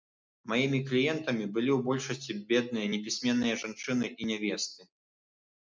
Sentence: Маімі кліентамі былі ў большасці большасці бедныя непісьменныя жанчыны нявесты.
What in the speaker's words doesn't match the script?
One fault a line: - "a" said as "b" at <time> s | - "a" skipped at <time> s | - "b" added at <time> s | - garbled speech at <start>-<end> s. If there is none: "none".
- "большасці" skipped at 2.3 s
- "і" added at 4.2 s